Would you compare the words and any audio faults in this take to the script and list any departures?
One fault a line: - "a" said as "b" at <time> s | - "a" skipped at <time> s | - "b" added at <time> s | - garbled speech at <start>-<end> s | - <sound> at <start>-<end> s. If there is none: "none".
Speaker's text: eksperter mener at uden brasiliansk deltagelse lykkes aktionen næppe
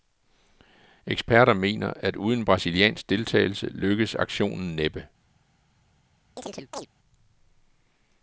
- chirp at 6.4-6.9 s